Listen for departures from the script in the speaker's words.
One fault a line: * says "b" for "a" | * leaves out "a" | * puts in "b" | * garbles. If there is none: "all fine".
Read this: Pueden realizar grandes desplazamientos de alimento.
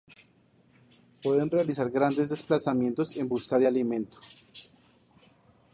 * puts in "en busca"